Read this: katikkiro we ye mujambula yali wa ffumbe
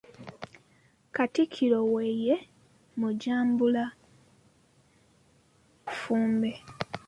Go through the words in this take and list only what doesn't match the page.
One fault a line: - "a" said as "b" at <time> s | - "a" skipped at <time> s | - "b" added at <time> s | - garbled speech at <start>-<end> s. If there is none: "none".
- "yali wa" skipped at 3.8 s